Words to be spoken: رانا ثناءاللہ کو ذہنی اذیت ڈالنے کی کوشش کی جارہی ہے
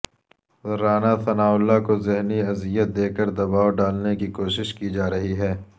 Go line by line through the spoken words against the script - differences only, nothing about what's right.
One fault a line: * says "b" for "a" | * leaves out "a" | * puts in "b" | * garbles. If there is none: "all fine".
* puts in "دے کر دباو"